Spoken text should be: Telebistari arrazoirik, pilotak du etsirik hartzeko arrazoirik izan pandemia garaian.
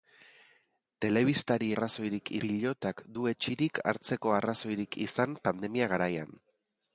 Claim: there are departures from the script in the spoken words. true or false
false